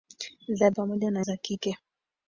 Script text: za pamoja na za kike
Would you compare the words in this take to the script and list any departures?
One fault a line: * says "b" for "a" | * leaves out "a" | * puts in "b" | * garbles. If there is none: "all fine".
all fine